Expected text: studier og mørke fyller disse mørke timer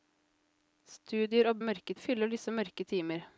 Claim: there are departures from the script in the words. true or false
false